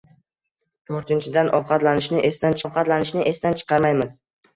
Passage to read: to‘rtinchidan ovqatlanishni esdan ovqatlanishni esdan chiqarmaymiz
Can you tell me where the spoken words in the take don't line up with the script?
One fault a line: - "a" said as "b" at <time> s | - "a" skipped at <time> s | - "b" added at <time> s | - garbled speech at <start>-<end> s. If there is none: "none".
none